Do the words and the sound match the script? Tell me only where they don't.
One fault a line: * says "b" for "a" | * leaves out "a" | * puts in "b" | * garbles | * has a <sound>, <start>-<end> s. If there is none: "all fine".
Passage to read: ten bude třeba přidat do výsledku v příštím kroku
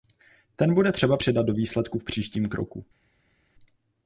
all fine